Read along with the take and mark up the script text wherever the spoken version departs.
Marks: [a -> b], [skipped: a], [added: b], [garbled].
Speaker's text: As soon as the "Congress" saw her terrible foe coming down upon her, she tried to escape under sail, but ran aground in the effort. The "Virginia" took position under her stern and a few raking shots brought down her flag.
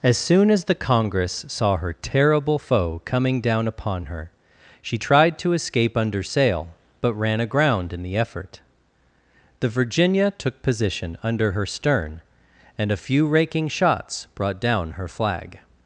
As soon as the "Congress" saw her terrible foe coming down upon her, she tried to escape under sail, but ran aground in the effort. The "Virginia" took position under her stern and a few raking shots brought down her flag.